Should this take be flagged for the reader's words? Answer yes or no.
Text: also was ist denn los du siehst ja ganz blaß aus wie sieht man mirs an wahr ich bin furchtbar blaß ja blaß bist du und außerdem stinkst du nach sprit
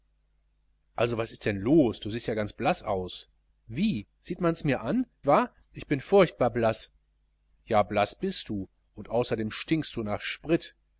no